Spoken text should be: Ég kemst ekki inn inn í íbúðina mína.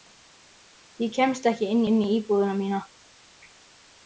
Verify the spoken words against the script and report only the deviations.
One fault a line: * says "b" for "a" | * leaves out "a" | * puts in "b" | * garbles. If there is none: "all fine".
all fine